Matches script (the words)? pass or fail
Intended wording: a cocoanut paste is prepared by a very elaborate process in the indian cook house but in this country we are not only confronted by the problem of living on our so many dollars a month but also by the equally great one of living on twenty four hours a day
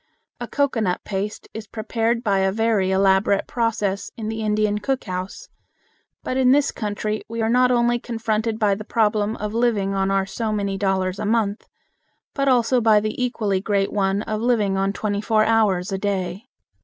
pass